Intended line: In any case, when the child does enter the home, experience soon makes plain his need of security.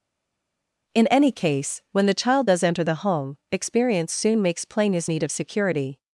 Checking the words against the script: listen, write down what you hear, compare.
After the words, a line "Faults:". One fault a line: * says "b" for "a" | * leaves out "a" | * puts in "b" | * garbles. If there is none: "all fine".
In any case, when the child does enter the home, experience soon makes plain his need of security.
Faults:
all fine